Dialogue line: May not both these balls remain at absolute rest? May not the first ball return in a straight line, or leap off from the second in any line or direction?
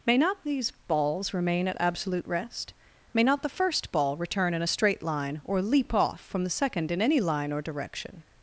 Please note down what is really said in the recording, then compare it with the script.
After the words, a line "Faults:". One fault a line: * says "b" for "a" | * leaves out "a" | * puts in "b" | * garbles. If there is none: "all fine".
May not these balls remain at absolute rest? May not the first ball return in a straight line, or leap off from the second in any line or direction?
Faults:
* leaves out "both"